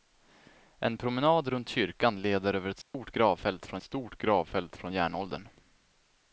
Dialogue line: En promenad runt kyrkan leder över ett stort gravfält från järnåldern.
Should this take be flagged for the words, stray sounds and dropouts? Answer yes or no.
yes